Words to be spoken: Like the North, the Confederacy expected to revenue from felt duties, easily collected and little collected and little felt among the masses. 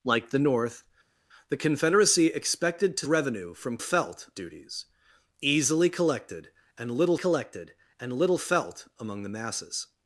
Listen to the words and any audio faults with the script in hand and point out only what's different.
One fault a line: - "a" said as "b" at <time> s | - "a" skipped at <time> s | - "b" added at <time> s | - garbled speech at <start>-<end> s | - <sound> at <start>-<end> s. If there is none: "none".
none